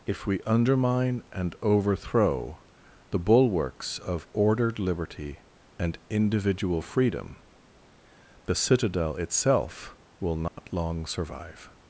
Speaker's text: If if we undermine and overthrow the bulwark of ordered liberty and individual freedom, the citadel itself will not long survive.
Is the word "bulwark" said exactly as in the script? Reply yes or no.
no